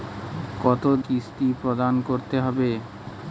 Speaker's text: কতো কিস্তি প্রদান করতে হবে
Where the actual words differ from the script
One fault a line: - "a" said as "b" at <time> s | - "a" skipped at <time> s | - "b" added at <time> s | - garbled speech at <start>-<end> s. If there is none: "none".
none